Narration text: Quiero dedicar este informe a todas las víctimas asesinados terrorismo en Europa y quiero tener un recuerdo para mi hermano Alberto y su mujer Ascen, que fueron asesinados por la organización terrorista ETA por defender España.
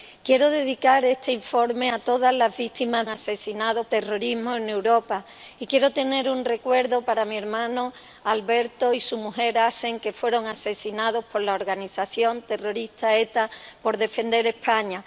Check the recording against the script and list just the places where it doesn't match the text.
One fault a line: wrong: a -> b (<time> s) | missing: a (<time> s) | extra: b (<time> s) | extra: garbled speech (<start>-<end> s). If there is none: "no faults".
no faults